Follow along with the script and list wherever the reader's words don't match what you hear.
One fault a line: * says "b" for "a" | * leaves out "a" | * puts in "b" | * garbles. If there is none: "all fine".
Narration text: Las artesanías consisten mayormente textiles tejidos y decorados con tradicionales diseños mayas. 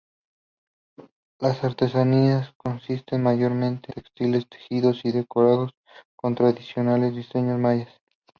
all fine